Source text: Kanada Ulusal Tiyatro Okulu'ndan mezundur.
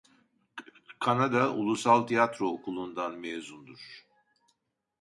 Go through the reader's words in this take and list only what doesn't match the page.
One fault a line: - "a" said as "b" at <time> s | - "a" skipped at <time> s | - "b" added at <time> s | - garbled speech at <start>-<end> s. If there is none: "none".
none